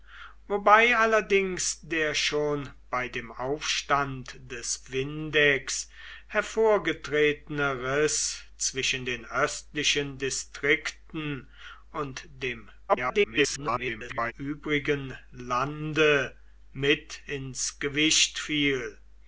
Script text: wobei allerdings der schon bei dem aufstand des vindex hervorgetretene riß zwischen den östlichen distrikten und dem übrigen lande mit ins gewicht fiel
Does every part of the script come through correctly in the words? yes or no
no